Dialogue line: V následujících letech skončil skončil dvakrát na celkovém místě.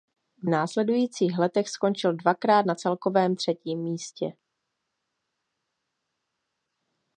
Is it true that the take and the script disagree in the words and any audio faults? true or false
true